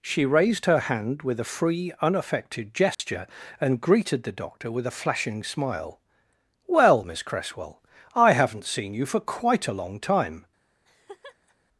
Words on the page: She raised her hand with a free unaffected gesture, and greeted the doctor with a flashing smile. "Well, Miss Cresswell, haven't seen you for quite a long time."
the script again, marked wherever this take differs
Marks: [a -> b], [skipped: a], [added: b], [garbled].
She raised her hand with a free unaffected gesture, and greeted the doctor with a flashing smile. "Well, Miss Cresswell, [added: I] haven't seen you for quite a long time."